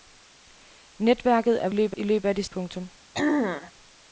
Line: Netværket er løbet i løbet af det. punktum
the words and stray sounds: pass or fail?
fail